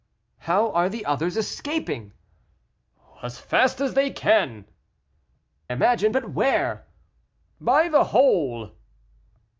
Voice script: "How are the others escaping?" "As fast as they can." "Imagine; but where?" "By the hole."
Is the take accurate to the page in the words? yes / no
yes